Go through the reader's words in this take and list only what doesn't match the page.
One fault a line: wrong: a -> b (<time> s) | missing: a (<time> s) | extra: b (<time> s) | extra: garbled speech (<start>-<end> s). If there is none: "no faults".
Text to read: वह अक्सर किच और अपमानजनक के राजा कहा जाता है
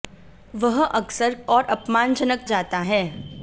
missing: किच (1.3 s)
missing: के राजा कहा (2.4 s)